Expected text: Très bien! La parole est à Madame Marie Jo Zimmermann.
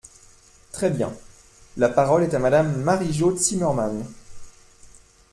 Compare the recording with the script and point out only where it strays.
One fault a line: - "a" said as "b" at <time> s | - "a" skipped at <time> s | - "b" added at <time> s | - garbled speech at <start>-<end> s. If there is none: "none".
none